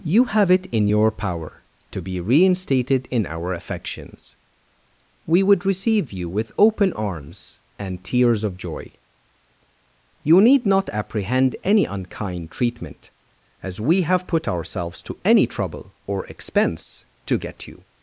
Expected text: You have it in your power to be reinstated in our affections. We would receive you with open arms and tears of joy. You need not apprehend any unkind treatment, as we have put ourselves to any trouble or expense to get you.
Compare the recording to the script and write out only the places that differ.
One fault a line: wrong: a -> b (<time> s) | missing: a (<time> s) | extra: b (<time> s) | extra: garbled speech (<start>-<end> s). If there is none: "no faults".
no faults